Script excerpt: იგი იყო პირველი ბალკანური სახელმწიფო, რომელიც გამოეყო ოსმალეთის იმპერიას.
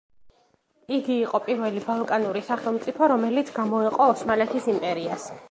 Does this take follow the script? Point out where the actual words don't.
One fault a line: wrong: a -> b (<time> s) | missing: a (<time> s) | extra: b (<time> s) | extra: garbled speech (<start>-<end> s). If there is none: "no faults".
no faults